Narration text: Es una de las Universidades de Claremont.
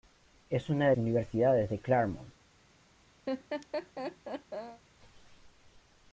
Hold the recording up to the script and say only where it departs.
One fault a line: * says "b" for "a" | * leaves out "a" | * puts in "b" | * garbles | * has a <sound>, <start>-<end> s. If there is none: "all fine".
* leaves out "las"
* has a laugh, 3.3-4.8 s